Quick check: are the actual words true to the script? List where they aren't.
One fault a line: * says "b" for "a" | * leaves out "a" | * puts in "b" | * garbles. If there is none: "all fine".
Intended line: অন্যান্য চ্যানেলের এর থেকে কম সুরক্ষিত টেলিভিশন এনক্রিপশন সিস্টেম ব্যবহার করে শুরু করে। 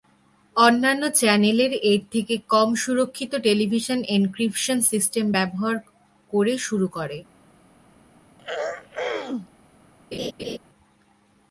all fine